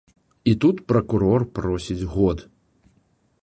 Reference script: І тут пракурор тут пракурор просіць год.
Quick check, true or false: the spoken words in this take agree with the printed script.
false